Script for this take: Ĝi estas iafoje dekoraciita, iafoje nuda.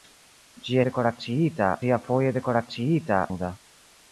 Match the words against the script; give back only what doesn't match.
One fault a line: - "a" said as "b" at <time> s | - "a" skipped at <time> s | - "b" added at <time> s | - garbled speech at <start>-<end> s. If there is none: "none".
- "estas" said as "dekoraciita" at 0.9 s
- "iafoje" skipped at 3.2 s